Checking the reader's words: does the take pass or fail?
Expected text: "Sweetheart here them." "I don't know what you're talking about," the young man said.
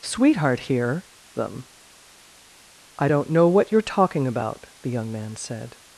pass